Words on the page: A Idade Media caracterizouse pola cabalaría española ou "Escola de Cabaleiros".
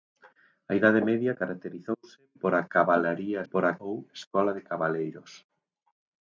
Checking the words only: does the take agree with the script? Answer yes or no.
no